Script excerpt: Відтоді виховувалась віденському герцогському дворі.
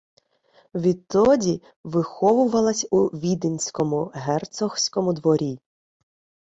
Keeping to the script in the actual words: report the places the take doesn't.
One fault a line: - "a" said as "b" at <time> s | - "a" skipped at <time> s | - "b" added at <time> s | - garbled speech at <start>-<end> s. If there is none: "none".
- "у" added at 2.9 s